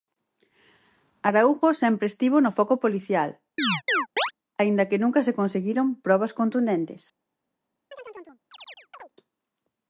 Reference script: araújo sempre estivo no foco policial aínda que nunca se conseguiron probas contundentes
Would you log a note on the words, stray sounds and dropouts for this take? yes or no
yes